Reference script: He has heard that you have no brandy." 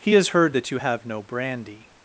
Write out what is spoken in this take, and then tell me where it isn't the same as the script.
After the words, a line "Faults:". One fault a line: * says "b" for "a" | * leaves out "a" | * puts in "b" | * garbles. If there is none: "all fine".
He has heard that you have no brandy."
Faults:
all fine